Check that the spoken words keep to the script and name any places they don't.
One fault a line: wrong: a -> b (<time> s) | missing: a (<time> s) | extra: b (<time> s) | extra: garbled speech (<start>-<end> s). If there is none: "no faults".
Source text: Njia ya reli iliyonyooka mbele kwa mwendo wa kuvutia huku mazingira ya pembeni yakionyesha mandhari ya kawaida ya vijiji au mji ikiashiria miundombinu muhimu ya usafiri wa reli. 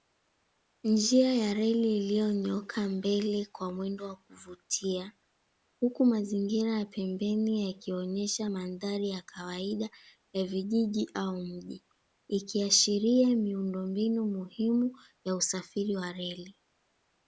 no faults